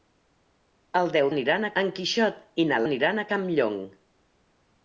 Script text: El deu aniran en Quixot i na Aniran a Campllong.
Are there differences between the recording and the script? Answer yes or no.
no